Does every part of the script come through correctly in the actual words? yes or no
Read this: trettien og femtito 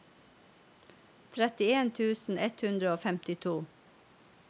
no